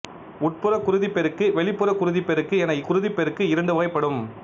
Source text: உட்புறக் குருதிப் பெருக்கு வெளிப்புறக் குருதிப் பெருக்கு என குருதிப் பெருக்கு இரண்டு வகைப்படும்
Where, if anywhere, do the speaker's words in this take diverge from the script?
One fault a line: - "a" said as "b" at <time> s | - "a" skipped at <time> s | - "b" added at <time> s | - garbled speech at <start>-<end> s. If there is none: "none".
none